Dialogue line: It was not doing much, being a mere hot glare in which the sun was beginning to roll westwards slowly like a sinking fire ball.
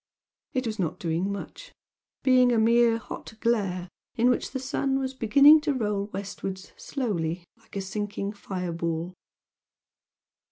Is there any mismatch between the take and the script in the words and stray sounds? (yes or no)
no